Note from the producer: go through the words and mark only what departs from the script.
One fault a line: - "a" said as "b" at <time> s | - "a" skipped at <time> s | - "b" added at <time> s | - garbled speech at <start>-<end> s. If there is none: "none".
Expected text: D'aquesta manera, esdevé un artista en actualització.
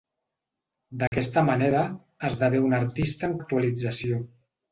none